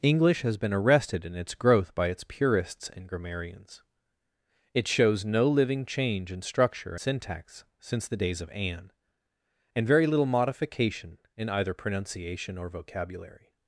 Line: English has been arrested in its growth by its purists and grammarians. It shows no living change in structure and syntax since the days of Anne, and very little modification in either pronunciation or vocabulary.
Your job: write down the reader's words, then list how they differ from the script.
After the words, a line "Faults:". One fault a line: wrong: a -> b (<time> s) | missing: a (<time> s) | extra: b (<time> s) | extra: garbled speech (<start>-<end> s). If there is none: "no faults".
English has been arrested in its growth by its purists and grammarians. It shows no living change in structure syntax since the days of Anne, and very little modification in either pronunciation or vocabulary.
Faults:
missing: and (7.0 s)